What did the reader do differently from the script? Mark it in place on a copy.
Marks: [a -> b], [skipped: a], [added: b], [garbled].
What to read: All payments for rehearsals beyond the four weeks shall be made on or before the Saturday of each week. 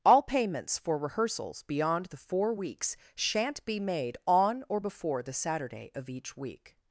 All payments for rehearsals beyond the four weeks [shall -> shan't] be made on or before the Saturday of each week.